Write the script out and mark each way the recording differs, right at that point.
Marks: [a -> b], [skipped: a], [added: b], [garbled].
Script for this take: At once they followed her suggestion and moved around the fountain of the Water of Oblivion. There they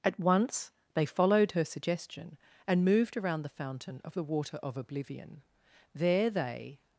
At once they followed her suggestion and moved around the fountain of the Water of Oblivion. There they